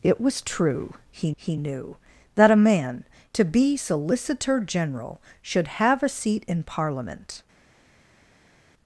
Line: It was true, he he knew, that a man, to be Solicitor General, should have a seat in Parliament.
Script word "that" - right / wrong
right